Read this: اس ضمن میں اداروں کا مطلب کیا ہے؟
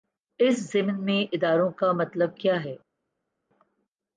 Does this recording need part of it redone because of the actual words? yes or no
no